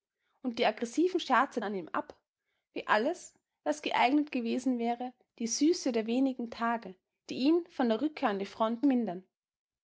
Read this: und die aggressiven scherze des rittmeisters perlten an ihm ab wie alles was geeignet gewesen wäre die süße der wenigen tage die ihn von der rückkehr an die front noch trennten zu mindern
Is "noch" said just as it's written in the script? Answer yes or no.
no